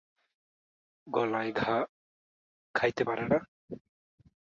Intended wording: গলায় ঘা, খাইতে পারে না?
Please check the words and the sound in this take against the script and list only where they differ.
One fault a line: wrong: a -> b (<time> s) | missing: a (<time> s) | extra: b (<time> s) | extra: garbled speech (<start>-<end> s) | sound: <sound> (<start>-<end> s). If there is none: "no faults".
no faults